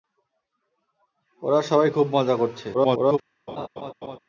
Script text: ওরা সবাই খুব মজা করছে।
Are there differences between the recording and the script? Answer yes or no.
yes